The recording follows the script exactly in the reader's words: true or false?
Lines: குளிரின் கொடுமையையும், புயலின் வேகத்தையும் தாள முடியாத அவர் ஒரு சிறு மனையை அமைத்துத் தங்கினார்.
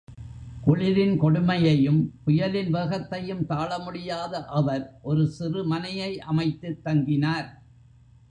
true